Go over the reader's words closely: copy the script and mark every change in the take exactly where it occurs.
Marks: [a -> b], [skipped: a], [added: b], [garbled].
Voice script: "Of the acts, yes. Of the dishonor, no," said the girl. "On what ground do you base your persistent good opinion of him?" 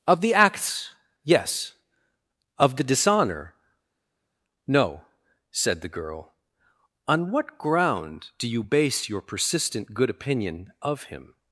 "Of the acts, yes. Of the dishonor, no," said the girl. "On what ground do you base your persistent good opinion of him?"